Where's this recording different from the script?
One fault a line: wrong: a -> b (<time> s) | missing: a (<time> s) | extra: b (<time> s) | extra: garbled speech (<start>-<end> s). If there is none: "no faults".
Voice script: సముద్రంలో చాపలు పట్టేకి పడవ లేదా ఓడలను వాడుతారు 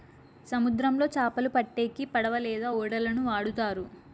no faults